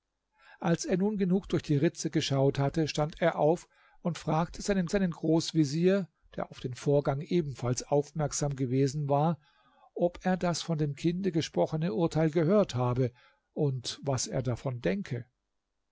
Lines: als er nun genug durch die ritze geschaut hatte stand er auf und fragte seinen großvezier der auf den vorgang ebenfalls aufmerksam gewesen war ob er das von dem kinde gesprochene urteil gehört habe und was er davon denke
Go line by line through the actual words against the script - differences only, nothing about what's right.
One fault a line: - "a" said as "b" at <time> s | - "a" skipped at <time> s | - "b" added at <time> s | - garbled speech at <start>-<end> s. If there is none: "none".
- "seinen" added at 4.9 s